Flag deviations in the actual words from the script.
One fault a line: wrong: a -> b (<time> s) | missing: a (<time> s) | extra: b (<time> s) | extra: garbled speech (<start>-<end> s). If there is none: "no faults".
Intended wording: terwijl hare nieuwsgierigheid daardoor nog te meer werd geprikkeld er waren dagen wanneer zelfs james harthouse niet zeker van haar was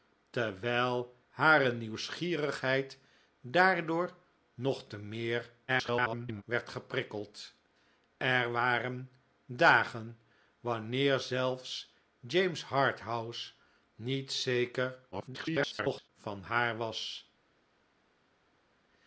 extra: garbled speech (5.7-6.4 s)
extra: garbled speech (15.1-16.1 s)